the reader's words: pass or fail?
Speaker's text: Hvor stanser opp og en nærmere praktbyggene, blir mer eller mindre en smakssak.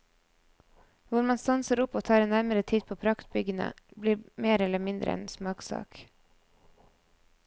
fail